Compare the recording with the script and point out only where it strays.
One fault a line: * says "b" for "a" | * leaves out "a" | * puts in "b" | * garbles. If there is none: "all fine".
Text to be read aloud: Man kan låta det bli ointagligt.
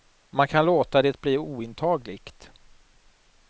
all fine